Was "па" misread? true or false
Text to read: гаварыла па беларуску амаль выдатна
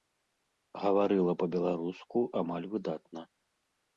false